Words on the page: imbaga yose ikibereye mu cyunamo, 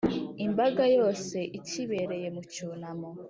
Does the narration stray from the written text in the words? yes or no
no